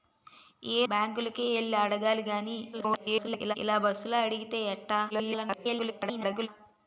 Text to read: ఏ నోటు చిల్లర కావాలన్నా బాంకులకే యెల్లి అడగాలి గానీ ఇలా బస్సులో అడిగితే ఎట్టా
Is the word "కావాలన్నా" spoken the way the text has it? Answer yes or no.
no